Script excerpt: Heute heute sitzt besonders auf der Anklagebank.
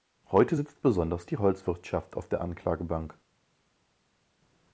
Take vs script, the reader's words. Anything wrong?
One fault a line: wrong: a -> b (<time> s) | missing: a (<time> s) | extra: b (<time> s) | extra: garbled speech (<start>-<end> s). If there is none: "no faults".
missing: heute (0.6 s)
extra: die Holzwirtschaft (1.2 s)